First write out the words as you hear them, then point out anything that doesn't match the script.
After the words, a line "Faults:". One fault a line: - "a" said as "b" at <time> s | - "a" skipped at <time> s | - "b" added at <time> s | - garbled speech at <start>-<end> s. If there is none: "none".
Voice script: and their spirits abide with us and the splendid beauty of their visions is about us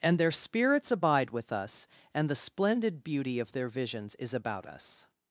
and their spirits abide with us and the splendid beauty of their visions is about us
Faults:
none